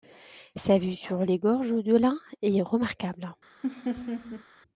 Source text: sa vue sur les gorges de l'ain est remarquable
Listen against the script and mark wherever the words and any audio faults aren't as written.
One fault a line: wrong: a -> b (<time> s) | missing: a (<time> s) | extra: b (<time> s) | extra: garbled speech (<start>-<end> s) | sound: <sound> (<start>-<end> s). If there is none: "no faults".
sound: laugh (3.6-4.4 s)